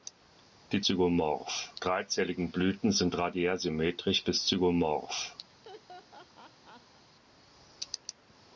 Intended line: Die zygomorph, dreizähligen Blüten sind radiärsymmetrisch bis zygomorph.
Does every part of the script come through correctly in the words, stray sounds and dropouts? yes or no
no